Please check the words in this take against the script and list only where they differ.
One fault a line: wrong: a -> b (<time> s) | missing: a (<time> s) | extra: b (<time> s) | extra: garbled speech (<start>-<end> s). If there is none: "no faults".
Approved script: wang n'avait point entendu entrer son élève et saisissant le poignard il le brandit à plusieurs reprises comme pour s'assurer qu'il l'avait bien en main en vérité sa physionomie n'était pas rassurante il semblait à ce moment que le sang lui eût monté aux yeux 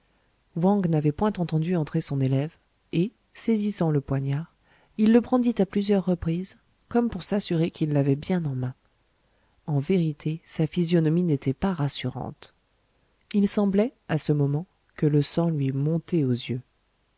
no faults